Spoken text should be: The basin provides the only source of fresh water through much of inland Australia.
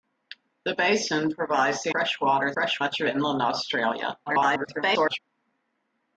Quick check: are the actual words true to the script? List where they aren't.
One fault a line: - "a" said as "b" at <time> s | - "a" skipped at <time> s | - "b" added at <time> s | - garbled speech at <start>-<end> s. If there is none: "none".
- "only source of" skipped at 1.9 s
- "through" said as "fresh" at 2.5 s
- garbled speech at 4.3-5.2 s